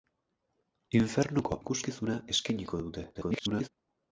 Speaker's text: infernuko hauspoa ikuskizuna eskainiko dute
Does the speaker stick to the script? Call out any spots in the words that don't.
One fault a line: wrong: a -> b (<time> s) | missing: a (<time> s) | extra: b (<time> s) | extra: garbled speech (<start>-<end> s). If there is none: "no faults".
missing: hauspoa (1.6 s)
extra: garbled speech (3.1-3.7 s)